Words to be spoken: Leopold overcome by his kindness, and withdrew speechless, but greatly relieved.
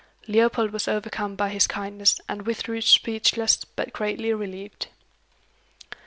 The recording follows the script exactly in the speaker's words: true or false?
false